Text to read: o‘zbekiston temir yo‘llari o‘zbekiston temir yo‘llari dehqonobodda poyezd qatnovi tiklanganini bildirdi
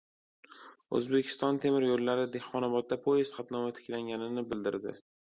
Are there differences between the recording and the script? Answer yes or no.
yes